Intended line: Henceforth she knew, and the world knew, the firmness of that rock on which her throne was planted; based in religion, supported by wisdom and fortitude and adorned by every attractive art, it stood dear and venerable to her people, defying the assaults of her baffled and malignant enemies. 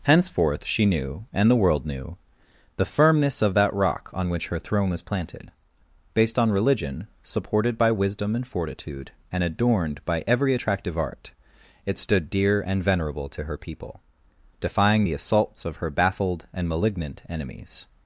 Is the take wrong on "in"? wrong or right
wrong